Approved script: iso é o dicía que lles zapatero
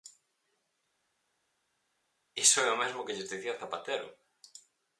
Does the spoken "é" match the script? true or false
true